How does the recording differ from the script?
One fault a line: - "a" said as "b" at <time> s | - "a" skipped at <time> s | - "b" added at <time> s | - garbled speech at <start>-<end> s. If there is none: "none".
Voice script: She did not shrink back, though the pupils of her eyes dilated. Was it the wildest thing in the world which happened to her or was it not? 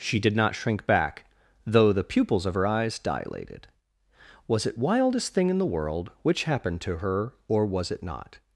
- "the" skipped at 4.8 s